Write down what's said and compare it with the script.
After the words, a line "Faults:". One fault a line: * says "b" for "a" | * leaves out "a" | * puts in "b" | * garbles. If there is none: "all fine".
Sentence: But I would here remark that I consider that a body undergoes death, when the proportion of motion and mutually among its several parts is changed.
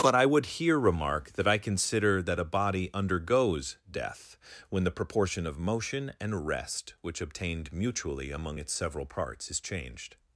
But I would here remark that I consider that a body undergoes death, when the proportion of motion and rest which obtained mutually among its several parts is changed.
Faults:
* puts in "rest which obtained"